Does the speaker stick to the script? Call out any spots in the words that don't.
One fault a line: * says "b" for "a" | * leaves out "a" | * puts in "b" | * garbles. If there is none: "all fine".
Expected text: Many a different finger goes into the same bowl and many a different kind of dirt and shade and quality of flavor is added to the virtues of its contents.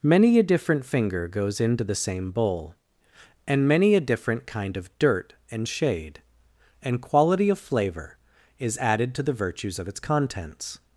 all fine